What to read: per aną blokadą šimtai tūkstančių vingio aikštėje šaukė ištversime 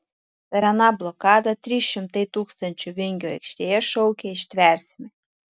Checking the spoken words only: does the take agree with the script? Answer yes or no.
no